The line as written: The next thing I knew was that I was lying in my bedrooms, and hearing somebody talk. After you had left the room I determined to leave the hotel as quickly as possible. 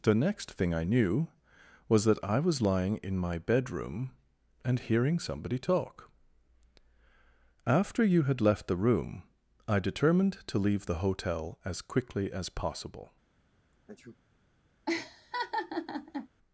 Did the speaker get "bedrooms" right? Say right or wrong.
wrong